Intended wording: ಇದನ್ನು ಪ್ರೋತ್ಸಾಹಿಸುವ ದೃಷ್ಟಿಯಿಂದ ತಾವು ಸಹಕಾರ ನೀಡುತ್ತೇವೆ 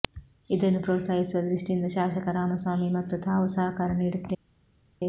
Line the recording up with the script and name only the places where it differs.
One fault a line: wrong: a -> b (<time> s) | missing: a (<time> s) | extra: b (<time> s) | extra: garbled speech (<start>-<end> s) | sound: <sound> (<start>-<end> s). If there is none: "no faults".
extra: ಶಾಸಕ ರಾಮಸ್ವಾಮಿ ಮತ್ತು (1.9 s)